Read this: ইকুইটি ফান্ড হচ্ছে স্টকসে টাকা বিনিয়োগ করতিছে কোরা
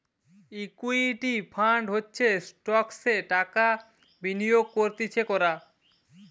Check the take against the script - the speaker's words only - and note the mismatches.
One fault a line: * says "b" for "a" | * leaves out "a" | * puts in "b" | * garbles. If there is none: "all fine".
all fine